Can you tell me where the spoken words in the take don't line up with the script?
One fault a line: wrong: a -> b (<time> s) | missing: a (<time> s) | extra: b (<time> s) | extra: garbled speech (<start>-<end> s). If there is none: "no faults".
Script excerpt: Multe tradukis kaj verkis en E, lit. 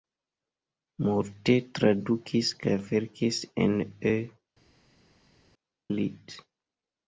no faults